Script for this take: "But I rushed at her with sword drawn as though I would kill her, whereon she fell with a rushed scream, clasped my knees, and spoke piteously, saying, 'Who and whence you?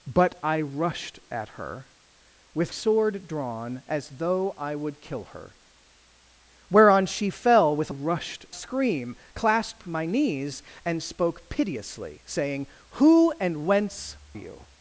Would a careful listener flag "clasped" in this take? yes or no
no